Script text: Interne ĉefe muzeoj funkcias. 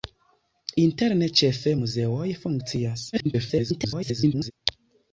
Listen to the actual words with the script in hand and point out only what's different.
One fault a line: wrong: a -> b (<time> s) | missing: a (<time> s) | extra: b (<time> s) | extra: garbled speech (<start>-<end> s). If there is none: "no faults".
extra: garbled speech (3.1-4.5 s)